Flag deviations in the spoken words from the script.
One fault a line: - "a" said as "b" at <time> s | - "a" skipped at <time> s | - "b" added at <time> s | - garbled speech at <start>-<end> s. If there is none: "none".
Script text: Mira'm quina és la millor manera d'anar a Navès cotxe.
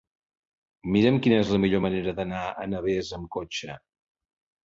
- "amb" added at 3.2 s